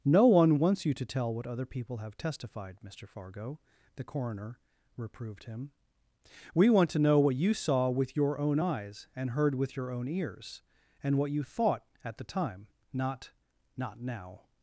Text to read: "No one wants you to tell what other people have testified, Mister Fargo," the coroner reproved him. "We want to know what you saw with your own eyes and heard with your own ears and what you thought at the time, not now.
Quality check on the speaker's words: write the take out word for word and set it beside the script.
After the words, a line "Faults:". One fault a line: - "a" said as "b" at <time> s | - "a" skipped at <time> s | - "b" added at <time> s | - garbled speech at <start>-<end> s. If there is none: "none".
"No one wants you to tell what other people have testified, Mister Fargo," the coroner reproved him. "We want to know what you saw with your own eyes and heard with your own ears and what you thought at the time, not not now.
Faults:
- "not" added at 13.7 s